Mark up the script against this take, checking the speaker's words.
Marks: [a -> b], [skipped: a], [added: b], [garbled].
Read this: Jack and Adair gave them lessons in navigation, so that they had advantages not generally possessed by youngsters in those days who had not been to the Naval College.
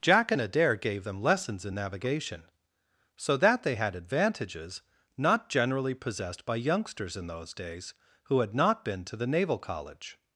Jack and Adair gave them lessons in navigation, so that they had advantages not generally possessed by youngsters in those days who had not been to the Naval College.